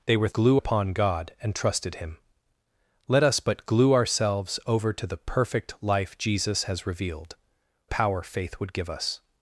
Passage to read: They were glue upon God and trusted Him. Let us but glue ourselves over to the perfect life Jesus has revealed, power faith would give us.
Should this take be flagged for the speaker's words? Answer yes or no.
no